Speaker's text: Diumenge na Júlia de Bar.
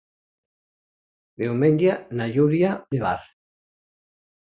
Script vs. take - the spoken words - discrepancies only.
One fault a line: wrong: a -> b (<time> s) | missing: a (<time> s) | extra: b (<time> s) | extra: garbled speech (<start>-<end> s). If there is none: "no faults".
no faults